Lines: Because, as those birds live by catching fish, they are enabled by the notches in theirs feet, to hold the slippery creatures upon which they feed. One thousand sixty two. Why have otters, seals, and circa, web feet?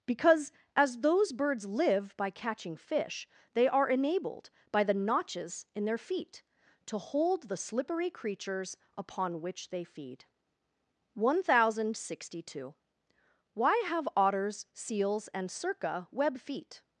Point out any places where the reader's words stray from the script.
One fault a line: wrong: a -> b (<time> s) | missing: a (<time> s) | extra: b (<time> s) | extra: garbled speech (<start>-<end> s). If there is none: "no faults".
wrong: theirs -> their (5.8 s)